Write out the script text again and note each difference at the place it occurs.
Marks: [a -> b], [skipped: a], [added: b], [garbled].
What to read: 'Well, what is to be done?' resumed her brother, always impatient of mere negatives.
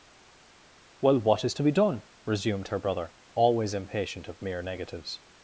'Well, what is to be done?' resumed her brother, always impatient of mere negatives.